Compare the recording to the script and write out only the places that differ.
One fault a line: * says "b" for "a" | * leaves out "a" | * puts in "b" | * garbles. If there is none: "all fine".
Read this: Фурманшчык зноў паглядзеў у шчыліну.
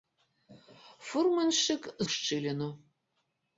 * leaves out "зноў паглядзеў"